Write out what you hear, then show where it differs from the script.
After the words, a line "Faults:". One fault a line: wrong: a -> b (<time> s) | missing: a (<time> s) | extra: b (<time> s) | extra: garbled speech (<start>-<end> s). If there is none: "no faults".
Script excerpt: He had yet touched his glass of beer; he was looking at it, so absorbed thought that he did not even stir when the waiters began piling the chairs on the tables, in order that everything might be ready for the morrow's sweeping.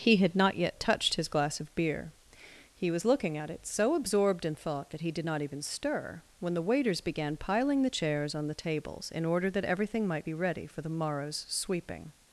He had not yet touched his glass of beer; he was looking at it, so absorbed in thought that he did not even stir when the waiters began piling the chairs on the tables, in order that everything might be ready for the morrow's sweeping.
Faults:
extra: not (0.3 s)
extra: in (4.4 s)